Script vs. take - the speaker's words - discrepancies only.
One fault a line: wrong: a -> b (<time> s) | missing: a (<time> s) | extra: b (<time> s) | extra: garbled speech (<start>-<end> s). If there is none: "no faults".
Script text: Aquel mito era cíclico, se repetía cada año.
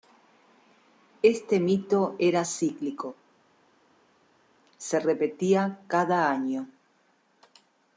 wrong: Aquel -> Este (1.2 s)